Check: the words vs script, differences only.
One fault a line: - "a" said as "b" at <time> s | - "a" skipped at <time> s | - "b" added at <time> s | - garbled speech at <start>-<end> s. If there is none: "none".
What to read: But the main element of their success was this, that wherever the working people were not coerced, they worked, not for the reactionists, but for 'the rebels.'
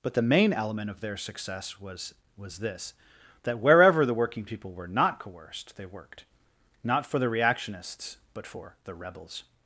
- "was" added at 2.4 s